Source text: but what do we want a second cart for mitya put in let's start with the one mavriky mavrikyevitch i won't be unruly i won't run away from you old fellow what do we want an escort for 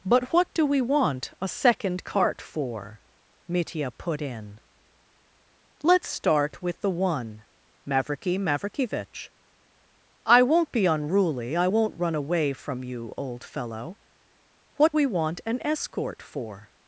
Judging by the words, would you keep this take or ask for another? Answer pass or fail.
fail